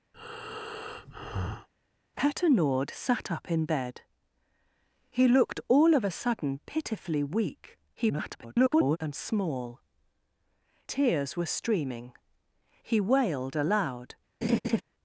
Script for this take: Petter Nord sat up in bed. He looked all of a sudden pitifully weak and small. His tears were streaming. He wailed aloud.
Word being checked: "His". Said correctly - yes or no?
no